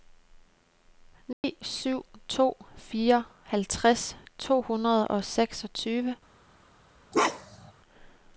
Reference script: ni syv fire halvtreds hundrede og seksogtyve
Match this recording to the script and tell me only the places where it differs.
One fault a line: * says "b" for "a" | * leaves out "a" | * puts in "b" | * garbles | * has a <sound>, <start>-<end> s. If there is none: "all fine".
* has a dropout, 1.3-1.4 s
* puts in "to"
* puts in "to"
* has a bark, 7.1-7.7 s